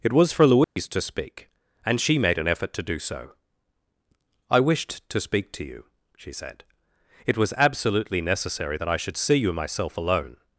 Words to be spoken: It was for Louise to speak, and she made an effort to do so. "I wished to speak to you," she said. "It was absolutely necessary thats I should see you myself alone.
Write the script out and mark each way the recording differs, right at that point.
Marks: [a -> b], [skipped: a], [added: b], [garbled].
It was for Louise to speak, and she made an effort to do so. "I wished to speak to you," she said. "It was absolutely necessary [thats -> that] I should see you myself alone.